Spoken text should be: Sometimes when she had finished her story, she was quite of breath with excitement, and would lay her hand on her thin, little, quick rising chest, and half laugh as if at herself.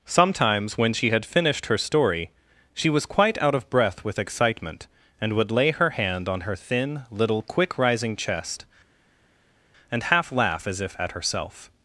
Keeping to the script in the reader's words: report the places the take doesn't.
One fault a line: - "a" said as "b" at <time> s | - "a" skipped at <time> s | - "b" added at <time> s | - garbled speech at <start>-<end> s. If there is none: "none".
- "out" added at 3.4 s